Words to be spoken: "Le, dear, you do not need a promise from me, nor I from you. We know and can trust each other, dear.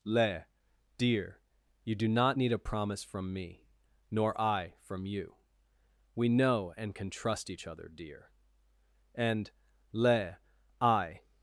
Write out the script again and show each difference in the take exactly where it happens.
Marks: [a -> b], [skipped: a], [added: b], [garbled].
"Le, dear, you do not need a promise from me, nor I from you. We know and can trust each other, dear. [added: And Le I]